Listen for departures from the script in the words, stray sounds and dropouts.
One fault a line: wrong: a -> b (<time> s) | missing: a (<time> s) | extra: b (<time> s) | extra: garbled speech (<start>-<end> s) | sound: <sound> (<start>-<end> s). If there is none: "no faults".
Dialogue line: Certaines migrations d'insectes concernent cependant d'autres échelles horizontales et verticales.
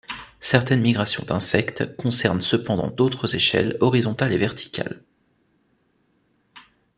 no faults